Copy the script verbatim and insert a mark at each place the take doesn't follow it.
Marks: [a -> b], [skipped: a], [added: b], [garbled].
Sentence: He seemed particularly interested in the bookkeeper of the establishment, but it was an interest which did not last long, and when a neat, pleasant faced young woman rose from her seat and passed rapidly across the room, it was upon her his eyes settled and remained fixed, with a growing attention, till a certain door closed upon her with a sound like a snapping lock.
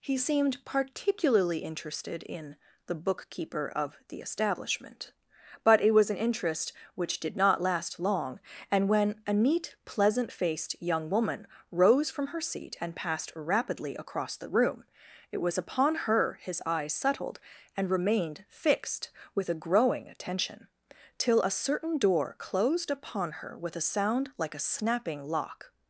He seemed particularly interested in the bookkeeper of the establishment, but it was an interest which did not last long, and when a neat, pleasant faced young woman rose from her seat and passed rapidly across the room, it was upon her his eyes settled and remained fixed, with a growing attention, till a certain door closed upon her with a sound like a snapping lock.